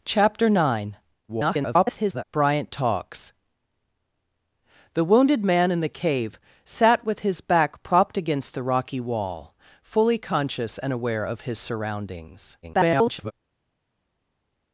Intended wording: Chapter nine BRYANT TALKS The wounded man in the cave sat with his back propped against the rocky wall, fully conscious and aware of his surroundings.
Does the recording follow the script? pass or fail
fail